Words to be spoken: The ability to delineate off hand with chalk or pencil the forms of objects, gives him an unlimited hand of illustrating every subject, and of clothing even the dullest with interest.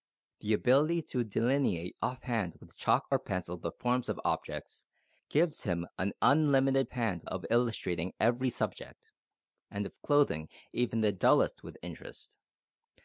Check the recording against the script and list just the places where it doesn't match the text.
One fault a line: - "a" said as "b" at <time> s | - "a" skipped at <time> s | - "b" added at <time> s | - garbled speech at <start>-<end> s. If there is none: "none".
none